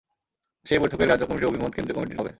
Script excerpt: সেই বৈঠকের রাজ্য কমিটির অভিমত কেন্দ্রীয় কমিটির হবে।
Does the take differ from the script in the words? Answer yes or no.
no